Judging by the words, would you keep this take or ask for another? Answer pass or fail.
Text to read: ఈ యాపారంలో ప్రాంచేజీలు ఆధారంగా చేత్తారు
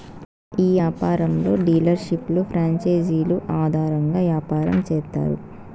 fail